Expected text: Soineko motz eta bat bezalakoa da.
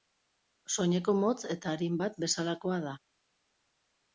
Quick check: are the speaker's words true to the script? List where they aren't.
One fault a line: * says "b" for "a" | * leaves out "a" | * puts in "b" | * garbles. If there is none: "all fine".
* puts in "arin"